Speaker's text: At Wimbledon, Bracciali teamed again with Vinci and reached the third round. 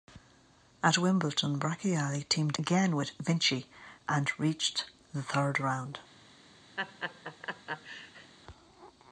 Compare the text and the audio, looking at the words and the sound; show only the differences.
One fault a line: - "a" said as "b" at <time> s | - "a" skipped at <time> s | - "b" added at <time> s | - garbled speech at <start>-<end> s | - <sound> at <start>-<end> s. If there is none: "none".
- laugh at 6.8-8.3 s